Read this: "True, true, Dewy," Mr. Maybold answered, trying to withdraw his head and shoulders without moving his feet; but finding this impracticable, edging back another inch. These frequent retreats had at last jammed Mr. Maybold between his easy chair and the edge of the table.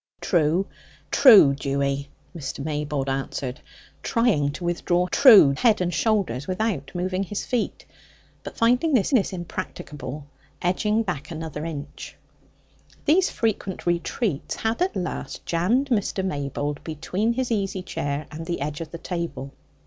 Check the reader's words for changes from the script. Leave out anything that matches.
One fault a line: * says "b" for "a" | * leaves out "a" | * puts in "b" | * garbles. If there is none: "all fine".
* says "true" for "his"
* puts in "this"